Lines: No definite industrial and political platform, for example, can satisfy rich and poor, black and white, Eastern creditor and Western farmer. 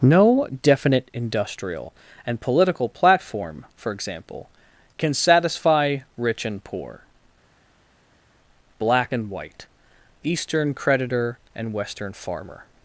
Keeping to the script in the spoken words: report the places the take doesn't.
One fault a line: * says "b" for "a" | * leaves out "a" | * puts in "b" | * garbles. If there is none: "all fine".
all fine